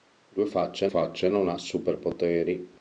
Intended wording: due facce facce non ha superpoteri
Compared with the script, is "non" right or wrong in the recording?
right